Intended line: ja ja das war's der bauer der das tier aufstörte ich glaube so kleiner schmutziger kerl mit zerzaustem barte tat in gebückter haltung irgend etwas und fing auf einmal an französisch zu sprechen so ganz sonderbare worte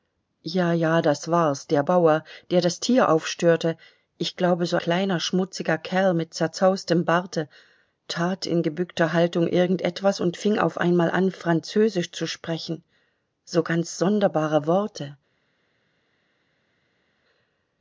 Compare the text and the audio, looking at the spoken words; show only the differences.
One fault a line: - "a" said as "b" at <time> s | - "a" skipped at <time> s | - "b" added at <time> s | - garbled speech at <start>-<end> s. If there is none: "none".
none